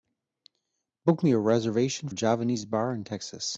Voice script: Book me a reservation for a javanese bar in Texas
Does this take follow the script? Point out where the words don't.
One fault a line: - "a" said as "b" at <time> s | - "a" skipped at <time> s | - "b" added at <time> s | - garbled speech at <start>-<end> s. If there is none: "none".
- "for" skipped at 2.1 s